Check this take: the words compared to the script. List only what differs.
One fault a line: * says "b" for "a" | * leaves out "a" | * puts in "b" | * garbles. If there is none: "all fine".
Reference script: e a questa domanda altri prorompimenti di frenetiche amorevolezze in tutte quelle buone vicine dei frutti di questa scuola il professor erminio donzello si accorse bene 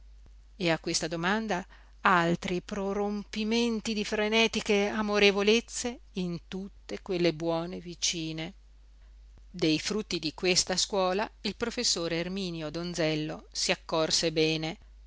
all fine